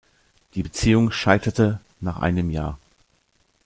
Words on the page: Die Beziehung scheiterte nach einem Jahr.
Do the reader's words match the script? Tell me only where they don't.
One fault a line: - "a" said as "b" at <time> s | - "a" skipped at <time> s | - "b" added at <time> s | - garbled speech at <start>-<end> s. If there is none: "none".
none